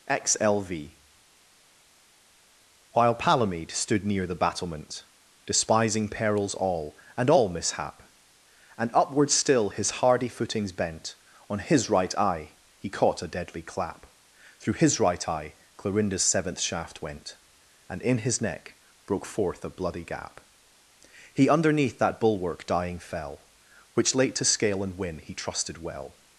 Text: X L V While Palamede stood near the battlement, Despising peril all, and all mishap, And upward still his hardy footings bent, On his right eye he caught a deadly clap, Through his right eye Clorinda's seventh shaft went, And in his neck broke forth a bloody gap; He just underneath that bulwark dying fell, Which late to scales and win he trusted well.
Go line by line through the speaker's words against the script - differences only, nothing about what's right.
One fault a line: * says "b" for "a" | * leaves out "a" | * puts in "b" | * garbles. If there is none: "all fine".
* says "perils" for "peril"
* leaves out "just"
* says "scale" for "scales"